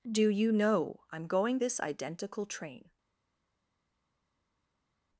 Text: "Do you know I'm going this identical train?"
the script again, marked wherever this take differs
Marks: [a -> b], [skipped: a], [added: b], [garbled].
"Do you know I'm going this identical train?"